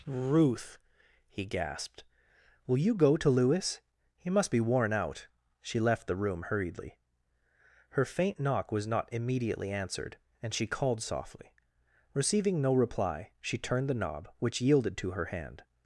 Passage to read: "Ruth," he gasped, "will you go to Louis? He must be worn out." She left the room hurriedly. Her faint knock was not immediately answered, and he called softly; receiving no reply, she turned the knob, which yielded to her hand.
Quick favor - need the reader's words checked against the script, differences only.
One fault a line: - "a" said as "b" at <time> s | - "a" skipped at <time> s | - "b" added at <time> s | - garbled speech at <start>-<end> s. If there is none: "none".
- "he" said as "she" at 10.5 s